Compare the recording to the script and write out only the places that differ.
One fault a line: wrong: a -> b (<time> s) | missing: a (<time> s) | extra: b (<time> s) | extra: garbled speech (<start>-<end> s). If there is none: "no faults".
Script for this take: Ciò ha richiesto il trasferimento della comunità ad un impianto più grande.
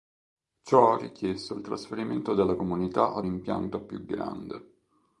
missing: un (3.3 s)